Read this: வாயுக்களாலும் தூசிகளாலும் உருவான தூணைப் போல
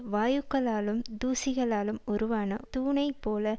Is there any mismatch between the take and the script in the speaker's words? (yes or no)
no